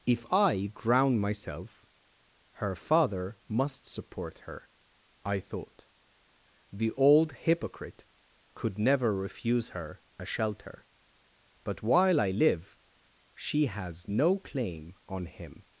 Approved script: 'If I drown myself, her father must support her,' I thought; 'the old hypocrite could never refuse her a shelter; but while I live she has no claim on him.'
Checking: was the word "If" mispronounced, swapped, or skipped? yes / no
no